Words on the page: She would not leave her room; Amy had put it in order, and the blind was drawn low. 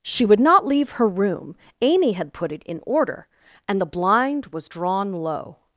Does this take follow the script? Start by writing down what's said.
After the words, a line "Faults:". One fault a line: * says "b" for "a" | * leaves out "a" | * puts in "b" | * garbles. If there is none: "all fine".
She would not leave her room; Amy had put it in order, and the blind was drawn low.
Faults:
all fine